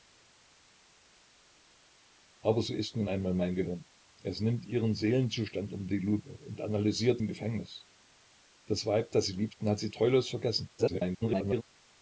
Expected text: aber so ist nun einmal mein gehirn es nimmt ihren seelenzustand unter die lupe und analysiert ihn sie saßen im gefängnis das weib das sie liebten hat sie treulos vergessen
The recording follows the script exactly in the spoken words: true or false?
false